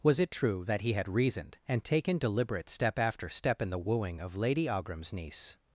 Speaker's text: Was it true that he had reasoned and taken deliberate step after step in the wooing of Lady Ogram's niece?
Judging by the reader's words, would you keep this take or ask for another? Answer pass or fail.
pass